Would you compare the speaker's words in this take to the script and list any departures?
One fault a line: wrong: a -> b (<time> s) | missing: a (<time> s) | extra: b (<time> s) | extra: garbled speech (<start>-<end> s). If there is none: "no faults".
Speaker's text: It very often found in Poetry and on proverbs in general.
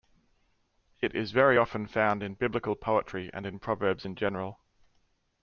extra: is (1.1 s)
extra: Biblical (2.3 s)
wrong: on -> in (3.4 s)